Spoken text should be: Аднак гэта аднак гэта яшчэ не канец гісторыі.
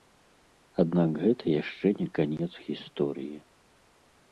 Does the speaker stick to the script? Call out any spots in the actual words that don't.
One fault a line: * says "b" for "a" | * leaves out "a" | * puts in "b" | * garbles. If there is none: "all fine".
* leaves out "аднак гэта"